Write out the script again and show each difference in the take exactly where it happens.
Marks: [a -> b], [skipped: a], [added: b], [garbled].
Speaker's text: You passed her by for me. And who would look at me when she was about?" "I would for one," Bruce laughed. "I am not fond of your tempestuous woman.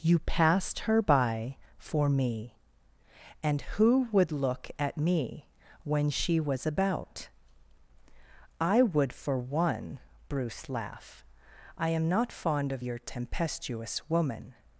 You passed her by for me. And who would look at me when she was about?" "I would for one," Bruce [laughed. -> laugh] "I am not fond of your tempestuous woman.